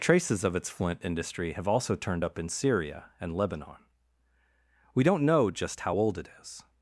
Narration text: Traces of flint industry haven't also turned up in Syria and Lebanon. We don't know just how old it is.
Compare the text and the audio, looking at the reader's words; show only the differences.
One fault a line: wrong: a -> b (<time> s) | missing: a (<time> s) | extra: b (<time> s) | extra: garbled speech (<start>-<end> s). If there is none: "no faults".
extra: its (0.6 s)
wrong: haven't -> have (1.5 s)